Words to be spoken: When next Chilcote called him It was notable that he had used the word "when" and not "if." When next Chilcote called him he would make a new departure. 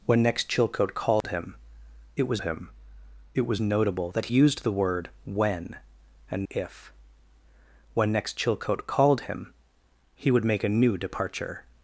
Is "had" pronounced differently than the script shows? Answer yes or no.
yes